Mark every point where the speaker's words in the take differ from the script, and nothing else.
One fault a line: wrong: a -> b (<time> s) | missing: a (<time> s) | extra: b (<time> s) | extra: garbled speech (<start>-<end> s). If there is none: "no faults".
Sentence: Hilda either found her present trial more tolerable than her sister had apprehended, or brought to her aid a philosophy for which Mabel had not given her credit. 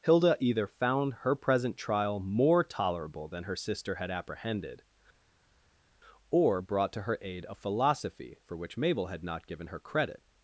no faults